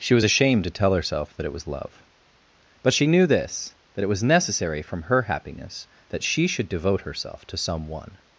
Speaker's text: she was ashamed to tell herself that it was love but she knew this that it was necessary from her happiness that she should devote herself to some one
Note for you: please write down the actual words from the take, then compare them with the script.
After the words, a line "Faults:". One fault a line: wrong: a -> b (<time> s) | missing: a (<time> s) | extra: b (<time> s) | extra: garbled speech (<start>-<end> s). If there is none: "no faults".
she was ashamed to tell herself that it was love but she knew this that it was necessary from her happiness that she should devote herself to some one
Faults:
no faults